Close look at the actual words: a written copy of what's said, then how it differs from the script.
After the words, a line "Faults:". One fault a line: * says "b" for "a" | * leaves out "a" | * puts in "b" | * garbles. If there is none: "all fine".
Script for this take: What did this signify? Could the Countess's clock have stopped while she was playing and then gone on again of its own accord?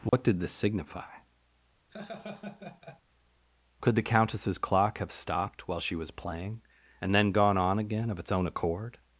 What did this signify? Could the Countess's clock have stopped while she was playing and then gone on again of its own accord?
Faults:
all fine